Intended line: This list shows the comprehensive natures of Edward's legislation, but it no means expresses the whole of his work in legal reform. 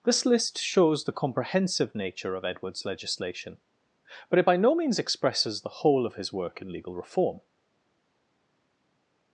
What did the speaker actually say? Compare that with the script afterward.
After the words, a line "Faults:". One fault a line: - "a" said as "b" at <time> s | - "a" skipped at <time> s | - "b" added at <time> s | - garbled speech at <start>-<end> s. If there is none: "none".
This list shows the comprehensive nature of Edward's legislation, but it by no means expresses the whole of his work in legal reform.
Faults:
- "natures" said as "nature" at 1.9 s
- "by" added at 4.4 s